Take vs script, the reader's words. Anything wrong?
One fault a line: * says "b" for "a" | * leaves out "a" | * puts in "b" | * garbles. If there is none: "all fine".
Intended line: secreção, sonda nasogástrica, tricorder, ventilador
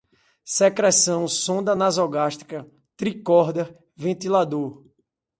all fine